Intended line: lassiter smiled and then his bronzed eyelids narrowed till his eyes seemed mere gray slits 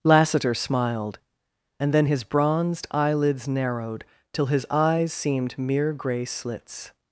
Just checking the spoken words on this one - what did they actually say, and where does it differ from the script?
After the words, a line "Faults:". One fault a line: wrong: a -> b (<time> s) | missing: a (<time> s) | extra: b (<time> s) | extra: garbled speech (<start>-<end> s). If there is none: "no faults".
lassiter smiled and then his bronzed eyelids narrowed till his eyes seemed mere gray slits
Faults:
no faults